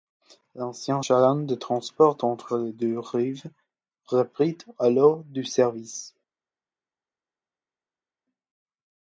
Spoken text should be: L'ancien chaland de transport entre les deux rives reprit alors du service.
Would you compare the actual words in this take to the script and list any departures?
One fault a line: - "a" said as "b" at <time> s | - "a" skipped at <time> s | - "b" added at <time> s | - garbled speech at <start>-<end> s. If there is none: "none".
none